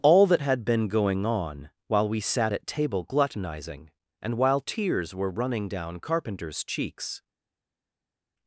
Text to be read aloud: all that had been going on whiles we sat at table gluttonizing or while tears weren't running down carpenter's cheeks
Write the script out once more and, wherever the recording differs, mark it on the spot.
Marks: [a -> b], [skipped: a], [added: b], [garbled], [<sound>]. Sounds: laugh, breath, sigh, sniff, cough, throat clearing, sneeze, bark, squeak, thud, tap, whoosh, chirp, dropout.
all that had been going on [whiles -> while] we sat at table gluttonizing [or -> and] while tears [weren't -> were] running down carpenter's cheeks